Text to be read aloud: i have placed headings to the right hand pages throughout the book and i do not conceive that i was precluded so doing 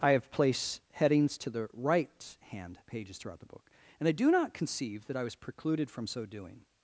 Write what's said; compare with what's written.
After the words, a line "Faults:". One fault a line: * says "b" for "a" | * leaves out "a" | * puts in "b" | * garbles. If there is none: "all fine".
i have placed headings to the right hand pages throughout the book and i do not conceive that i was precluded from so doing
Faults:
* puts in "from"